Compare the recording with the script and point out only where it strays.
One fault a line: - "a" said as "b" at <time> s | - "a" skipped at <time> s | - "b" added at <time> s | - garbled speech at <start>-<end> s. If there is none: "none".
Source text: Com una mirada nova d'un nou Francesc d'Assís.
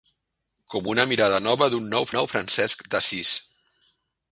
- "nou" added at 2.2 s